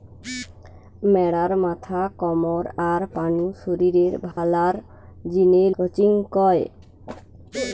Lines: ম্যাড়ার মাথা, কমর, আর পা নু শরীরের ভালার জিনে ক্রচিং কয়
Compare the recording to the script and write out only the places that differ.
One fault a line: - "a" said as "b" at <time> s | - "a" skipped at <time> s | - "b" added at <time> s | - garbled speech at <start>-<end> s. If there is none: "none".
none